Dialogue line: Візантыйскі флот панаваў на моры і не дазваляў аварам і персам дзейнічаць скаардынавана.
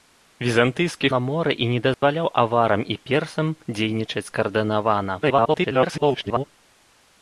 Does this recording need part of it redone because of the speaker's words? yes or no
yes